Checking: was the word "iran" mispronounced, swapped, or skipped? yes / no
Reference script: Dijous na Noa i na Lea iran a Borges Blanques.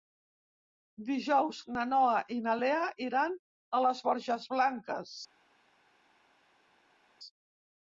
no